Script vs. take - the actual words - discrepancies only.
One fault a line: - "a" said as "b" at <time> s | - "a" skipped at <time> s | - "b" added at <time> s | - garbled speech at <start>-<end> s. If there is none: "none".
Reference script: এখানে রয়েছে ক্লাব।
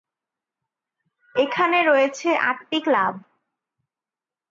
- "আটটি" added at 2.5 s